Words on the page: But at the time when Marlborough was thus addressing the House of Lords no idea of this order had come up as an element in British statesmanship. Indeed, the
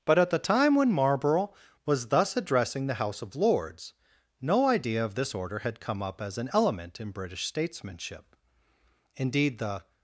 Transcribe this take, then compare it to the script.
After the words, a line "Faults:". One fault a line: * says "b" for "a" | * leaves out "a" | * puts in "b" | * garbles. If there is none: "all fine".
But at the time when Marlborough was thus addressing the House of Lords no idea of this order had come up as an element in British statesmanship. Indeed, the
Faults:
all fine